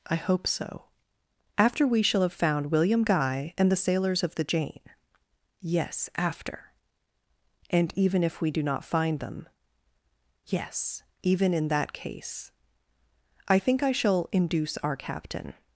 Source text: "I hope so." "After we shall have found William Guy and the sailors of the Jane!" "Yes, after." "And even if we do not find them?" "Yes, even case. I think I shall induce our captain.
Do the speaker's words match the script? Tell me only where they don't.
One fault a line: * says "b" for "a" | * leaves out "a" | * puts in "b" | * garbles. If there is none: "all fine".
* puts in "in that"